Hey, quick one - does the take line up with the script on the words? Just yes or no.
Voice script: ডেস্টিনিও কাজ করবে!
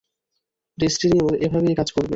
no